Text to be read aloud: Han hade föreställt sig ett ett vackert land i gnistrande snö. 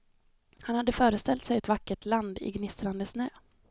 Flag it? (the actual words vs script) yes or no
yes